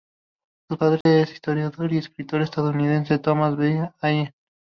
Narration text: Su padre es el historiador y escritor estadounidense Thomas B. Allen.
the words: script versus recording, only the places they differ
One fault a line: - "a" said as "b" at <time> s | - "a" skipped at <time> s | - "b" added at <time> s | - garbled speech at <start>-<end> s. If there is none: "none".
none